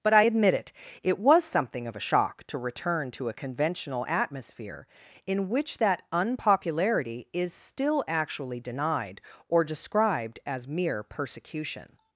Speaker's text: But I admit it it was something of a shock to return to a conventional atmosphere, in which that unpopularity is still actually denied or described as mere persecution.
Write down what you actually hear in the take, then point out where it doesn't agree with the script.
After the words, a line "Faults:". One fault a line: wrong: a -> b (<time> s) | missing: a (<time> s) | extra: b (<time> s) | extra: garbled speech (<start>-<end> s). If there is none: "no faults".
But I admit it it was something of a shock to return to a conventional atmosphere, in which that unpopularity is still actually denied or described as mere persecution.
Faults:
no faults